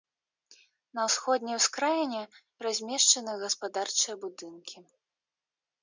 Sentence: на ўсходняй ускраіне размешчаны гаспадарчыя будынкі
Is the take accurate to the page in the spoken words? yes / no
yes